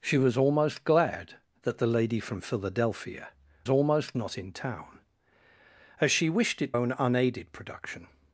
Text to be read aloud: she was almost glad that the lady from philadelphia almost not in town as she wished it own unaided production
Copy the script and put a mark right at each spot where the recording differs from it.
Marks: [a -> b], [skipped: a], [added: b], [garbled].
she was almost glad that the lady from philadelphia almost not in town as she wished it own unaided production